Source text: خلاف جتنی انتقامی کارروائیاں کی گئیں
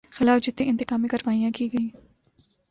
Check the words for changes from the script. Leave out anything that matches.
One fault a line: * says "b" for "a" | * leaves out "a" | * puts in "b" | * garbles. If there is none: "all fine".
all fine